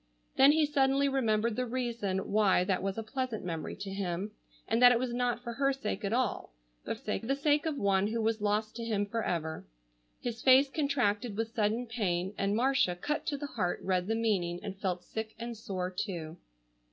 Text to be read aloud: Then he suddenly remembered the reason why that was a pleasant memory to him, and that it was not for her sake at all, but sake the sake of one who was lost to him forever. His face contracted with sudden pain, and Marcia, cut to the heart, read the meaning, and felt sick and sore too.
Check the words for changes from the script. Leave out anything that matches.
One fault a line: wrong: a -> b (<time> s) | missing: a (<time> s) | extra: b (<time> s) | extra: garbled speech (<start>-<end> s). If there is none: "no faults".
no faults